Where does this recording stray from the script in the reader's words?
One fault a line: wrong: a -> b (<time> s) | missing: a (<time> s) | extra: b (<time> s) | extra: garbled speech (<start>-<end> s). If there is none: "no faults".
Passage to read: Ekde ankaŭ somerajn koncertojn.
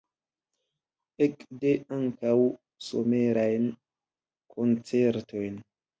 no faults